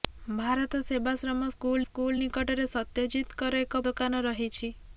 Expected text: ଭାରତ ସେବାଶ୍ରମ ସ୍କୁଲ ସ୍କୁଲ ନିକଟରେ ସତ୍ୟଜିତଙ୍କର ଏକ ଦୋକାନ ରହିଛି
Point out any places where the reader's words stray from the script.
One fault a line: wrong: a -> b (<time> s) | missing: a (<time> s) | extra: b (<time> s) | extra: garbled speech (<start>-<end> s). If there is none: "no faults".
no faults